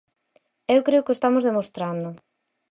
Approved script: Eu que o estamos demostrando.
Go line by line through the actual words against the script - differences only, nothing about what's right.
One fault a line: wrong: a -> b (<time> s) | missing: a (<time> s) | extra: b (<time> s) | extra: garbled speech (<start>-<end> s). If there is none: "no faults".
extra: creo (0.9 s)